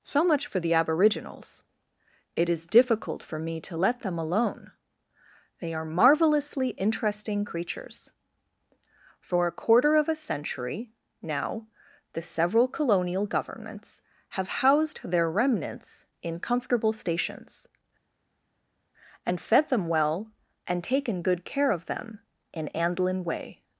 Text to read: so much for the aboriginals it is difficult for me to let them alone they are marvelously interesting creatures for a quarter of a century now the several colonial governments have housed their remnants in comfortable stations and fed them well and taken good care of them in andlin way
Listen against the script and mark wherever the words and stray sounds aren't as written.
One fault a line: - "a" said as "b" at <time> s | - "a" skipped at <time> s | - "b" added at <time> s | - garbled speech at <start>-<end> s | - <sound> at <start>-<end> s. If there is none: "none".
none